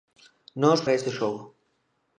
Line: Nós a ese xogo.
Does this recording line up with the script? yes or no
yes